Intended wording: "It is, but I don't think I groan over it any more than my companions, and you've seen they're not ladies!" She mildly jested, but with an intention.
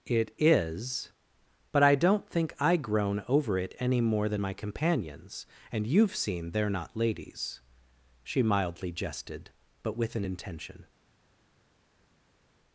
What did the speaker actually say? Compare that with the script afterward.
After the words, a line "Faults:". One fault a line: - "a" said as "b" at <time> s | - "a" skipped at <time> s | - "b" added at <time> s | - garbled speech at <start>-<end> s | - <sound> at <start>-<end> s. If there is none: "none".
"It is, but I don't think I groan over it any more than my companions, and you've seen they're not ladies!" She mildly jested, but with an intention.
Faults:
none